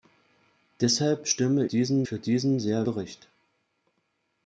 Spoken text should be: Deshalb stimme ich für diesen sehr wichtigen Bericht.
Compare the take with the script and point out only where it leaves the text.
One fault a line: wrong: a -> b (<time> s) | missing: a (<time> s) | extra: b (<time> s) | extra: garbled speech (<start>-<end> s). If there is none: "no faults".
wrong: ich -> diesen (1.6 s)
missing: wichtigen (2.9 s)